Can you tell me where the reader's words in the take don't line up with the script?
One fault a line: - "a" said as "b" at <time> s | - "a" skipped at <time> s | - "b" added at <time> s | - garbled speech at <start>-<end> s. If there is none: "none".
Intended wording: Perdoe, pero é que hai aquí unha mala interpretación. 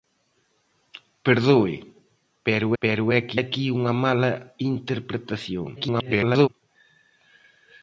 - "pero" added at 2.8 s
- "hai" skipped at 3.4 s
- garbled speech at 5.7-6.5 s